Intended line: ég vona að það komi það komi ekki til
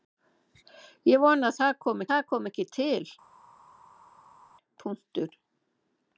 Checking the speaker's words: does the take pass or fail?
pass